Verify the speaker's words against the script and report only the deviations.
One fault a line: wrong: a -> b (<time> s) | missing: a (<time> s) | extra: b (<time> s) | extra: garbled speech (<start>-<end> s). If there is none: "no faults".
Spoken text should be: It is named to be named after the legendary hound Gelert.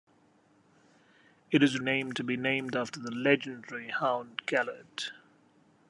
no faults